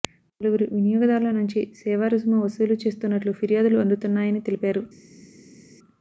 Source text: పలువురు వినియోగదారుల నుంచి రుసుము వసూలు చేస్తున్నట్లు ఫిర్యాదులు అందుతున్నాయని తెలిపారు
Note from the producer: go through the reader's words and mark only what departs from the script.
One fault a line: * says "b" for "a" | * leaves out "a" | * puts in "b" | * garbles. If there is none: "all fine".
* puts in "సేవా"